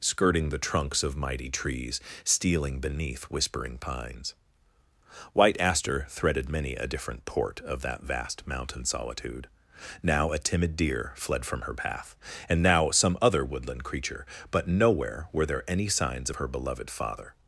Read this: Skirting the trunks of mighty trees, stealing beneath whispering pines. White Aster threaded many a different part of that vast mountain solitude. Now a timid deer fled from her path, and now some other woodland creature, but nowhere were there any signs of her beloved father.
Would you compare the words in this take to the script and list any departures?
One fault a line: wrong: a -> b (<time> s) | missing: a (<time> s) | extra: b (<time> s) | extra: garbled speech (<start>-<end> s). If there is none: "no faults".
wrong: part -> port (7.2 s)